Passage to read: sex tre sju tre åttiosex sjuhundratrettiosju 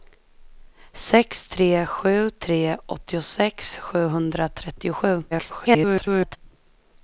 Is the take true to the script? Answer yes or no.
no